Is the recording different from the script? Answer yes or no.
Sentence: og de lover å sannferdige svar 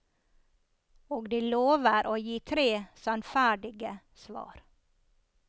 yes